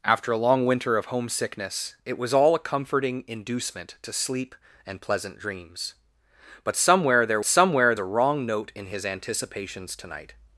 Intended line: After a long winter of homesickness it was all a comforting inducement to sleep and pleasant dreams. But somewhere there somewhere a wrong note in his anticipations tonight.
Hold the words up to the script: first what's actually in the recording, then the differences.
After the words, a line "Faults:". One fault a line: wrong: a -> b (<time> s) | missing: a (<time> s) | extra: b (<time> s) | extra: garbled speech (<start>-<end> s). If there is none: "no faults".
After a long winter of homesickness it was all a comforting inducement to sleep and pleasant dreams. But somewhere there somewhere a wrong note in his anticipations tonight.
Faults:
no faults